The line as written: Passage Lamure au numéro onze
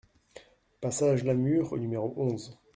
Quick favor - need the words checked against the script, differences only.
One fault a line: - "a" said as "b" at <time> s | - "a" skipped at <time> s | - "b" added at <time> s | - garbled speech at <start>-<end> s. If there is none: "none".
none